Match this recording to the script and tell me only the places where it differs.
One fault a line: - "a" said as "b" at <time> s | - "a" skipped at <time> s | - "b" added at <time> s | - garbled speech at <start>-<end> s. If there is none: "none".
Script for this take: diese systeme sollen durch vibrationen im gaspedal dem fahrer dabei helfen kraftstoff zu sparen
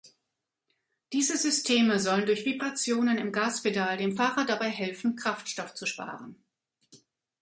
none